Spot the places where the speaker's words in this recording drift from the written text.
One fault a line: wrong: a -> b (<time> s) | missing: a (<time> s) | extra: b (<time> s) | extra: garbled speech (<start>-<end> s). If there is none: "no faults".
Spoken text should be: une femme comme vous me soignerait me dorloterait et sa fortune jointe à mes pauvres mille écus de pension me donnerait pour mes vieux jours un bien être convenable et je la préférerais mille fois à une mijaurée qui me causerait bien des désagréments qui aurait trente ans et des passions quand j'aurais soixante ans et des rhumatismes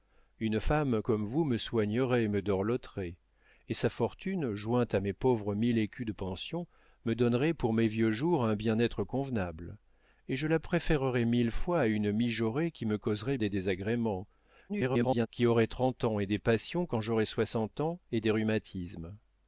missing: bien (13.4 s)
extra: garbled speech (14.7-15.3 s)